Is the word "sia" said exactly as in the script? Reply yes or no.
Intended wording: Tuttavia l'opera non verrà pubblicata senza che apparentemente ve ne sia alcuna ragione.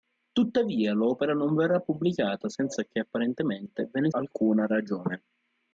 no